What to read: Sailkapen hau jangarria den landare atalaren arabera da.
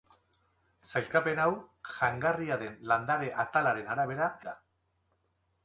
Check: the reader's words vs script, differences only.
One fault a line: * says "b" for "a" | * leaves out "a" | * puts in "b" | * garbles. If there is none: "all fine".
all fine